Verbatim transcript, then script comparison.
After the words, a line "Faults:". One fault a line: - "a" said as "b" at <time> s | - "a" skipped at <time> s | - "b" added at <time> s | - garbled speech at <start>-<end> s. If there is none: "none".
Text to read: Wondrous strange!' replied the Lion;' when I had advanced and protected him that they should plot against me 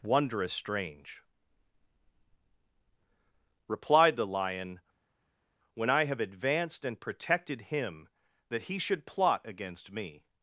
Wondrous strange!' replied the Lion;' when I have advanced and protected him that he should plot against me
Faults:
- "had" said as "have" at 6.0 s
- "they" said as "he" at 8.6 s